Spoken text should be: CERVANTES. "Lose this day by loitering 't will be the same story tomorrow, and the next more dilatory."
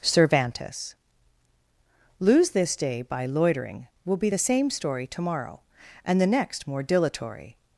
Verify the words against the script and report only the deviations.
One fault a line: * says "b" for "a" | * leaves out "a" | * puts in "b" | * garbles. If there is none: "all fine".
* leaves out "t"